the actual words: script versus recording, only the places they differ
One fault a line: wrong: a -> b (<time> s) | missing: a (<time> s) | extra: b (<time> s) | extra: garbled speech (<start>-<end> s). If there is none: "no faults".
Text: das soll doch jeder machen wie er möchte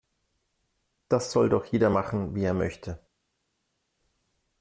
no faults